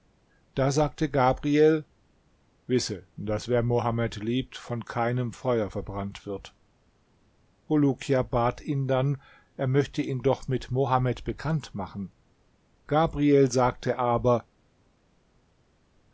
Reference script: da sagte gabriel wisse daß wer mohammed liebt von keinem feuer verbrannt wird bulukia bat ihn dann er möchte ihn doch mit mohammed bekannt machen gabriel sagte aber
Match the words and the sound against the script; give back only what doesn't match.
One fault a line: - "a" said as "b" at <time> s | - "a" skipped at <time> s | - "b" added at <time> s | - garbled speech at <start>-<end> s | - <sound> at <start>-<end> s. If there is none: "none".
none